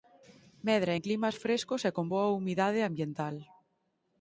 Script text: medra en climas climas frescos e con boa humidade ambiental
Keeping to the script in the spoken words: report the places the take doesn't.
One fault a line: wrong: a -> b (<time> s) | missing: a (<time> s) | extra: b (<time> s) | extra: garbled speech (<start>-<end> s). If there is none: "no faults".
missing: climas (1.4 s)